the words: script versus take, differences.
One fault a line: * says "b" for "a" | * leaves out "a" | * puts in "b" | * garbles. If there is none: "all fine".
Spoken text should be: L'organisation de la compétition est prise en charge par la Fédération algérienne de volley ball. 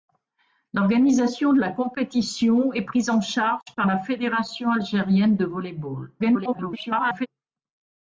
* garbles